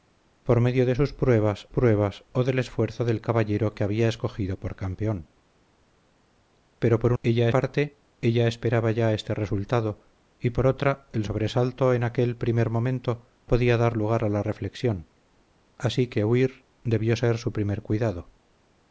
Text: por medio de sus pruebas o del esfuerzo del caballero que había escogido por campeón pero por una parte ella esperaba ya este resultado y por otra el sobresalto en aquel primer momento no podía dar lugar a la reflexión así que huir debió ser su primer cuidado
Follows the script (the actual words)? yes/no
no